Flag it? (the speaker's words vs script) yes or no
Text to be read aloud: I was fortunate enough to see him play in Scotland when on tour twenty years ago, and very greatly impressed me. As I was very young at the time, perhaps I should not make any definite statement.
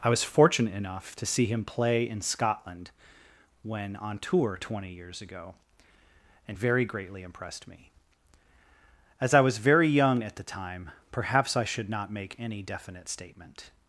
no